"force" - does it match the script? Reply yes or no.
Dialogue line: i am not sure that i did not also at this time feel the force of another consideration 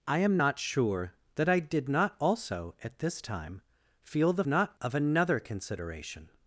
no